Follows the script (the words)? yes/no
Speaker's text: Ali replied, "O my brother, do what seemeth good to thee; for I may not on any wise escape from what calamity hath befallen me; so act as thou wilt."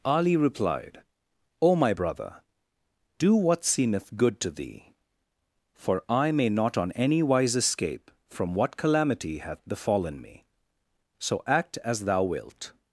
yes